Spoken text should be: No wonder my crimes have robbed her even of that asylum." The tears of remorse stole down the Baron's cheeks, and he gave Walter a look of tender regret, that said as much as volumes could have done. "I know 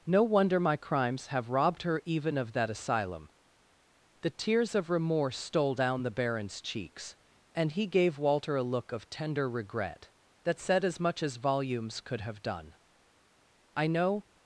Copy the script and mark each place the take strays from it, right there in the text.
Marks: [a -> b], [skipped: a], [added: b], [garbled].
No wonder my crimes have robbed her even of that asylum." The tears of remorse stole down the Baron's cheeks, and he gave Walter a look of tender regret, that said as much as volumes could have done. "I know